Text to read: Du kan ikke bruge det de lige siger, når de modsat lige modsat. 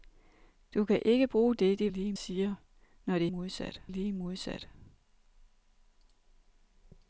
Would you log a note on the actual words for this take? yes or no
no